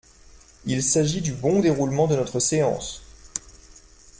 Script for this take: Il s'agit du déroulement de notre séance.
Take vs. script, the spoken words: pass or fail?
fail